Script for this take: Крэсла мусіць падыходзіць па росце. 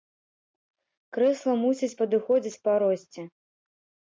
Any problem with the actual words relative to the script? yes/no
no